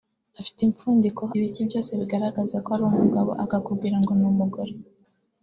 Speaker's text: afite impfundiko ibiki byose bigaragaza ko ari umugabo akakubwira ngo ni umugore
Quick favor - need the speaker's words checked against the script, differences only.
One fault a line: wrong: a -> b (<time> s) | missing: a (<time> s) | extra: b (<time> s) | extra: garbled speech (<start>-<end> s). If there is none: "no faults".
no faults